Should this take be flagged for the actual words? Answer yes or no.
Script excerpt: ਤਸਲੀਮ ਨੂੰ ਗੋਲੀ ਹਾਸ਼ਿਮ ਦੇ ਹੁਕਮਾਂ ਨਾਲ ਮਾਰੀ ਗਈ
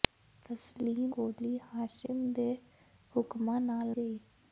yes